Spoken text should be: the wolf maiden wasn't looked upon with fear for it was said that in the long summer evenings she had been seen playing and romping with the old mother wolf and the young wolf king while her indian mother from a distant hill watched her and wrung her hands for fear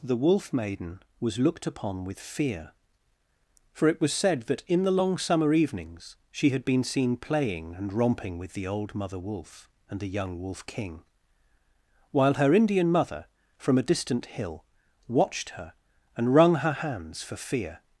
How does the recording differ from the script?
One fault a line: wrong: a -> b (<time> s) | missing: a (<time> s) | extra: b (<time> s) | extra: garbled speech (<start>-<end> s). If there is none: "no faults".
wrong: wasn't -> was (1.2 s)